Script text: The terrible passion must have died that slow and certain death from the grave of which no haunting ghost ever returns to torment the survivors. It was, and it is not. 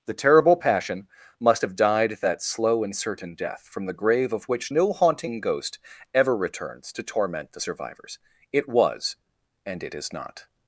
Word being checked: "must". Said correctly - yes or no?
yes